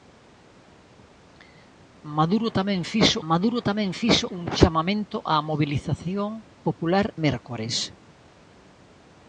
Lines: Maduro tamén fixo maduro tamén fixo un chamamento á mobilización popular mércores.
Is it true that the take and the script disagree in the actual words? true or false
false